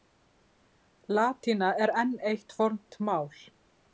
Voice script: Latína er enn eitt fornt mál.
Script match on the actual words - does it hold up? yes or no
yes